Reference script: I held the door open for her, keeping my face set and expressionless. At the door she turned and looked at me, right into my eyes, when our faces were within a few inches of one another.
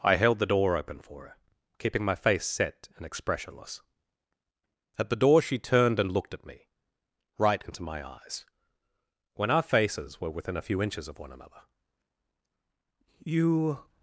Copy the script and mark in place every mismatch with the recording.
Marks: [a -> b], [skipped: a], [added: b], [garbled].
I held the door open for her, keeping my face set and expressionless. At the door she turned and looked at me, right into my eyes, when our faces were within a few inches of one another. [added: You]